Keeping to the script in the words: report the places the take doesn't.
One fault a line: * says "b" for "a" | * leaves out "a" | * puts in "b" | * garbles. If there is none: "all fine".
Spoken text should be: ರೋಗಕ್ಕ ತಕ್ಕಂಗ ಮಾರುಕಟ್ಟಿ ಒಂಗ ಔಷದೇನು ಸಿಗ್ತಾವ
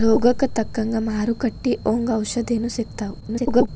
* garbles